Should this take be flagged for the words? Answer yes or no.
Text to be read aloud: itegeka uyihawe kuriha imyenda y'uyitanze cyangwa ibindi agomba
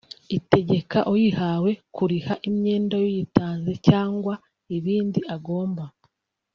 no